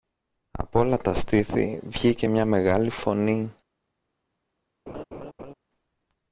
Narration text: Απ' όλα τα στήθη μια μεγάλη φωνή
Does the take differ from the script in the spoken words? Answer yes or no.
yes